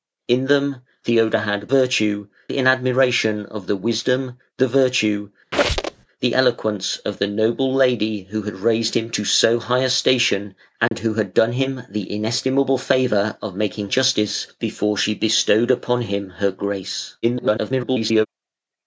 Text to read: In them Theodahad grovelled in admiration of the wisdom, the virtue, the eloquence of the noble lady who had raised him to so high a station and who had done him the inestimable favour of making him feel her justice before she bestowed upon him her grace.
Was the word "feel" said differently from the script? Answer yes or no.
yes